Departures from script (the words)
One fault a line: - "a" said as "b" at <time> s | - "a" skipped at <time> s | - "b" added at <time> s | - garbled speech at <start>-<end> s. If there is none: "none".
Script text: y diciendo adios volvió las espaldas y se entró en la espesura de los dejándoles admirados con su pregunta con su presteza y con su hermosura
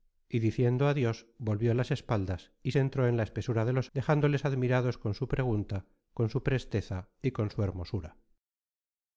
none